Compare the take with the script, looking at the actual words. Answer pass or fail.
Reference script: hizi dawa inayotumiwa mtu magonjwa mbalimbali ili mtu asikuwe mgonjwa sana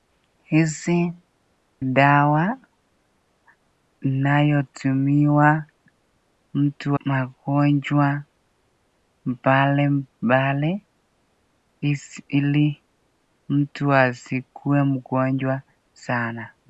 pass